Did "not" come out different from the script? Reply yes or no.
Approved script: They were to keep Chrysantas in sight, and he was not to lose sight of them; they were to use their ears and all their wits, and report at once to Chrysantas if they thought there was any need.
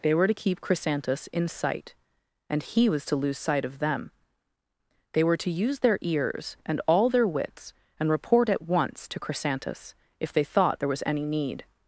yes